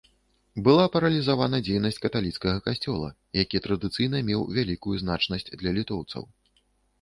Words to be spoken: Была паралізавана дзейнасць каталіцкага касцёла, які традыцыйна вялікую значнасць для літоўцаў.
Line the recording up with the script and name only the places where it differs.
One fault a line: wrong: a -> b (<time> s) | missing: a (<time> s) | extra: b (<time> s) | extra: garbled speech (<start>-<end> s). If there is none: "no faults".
extra: меў (4.3 s)